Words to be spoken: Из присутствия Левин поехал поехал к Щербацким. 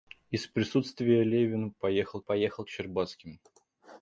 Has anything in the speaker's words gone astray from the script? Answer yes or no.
no